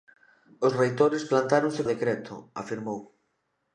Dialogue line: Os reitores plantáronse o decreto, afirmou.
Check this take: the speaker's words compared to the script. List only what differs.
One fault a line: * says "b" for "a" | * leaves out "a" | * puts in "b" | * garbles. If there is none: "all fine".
all fine